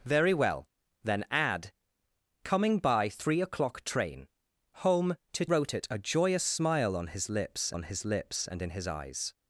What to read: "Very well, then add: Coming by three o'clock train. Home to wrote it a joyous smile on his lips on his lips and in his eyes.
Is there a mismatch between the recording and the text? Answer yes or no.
no